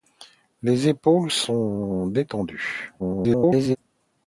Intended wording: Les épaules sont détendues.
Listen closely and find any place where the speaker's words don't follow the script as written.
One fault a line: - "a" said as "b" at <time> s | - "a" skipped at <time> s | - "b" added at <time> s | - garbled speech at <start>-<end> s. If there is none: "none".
- garbled speech at 3.0-3.8 s